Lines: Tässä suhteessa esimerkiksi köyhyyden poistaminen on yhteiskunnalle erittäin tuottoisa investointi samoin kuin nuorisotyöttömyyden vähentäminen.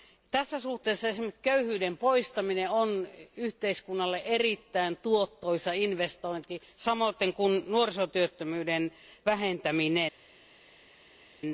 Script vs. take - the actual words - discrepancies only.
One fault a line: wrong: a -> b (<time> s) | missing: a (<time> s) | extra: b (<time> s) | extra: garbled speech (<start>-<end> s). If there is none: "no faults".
no faults